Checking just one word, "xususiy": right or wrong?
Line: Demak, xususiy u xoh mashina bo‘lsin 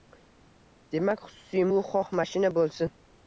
right